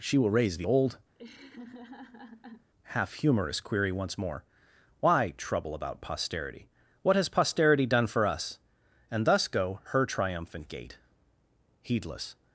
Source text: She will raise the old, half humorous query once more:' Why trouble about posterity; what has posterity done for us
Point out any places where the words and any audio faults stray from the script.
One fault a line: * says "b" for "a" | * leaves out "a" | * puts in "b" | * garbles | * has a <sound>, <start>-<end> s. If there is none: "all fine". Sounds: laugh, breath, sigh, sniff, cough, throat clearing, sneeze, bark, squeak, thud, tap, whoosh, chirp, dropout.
* has a laugh, 1.1-2.7 s
* puts in "and thus go her triumphant gait heedless"